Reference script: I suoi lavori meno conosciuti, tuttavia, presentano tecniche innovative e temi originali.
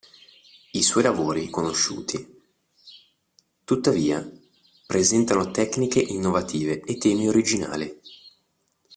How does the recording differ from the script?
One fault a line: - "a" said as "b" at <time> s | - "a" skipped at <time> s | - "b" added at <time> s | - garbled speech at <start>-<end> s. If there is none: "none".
- "meno" skipped at 1.5 s